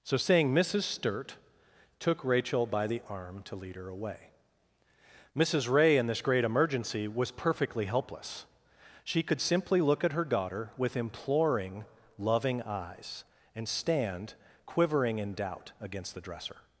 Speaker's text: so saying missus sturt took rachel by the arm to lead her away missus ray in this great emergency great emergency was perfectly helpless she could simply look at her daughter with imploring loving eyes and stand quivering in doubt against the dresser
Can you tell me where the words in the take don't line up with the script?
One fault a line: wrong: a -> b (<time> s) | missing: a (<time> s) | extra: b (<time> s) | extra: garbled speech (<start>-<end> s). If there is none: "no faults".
missing: great emergency (7.1 s)